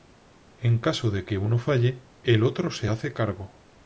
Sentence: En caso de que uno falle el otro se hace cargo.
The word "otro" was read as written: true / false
true